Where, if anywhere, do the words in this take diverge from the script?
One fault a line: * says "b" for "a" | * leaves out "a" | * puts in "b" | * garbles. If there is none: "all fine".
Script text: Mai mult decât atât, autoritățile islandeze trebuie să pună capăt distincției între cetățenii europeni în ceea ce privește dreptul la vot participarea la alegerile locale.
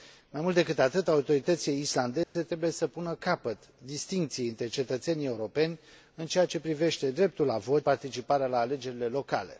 all fine